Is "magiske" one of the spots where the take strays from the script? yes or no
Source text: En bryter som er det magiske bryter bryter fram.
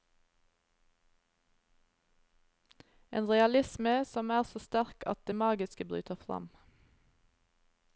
no